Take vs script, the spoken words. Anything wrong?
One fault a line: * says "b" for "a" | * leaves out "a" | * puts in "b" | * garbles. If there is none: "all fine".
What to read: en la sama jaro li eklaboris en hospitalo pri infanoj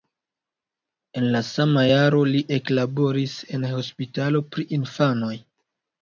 all fine